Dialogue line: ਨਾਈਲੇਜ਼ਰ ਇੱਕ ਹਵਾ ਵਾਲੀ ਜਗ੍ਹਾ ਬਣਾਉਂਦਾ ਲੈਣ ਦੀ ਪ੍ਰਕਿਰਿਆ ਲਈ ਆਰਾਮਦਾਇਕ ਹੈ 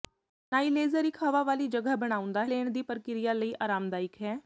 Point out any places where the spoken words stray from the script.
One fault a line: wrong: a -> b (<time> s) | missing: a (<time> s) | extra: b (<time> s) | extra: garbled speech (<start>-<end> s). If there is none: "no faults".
no faults